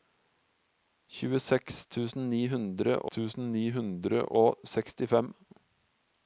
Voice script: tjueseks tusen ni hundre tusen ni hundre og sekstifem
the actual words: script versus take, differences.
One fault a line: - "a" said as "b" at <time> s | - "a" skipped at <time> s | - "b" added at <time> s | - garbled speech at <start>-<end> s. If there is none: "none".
none